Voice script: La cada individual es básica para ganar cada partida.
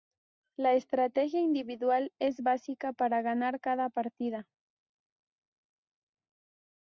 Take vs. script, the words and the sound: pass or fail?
fail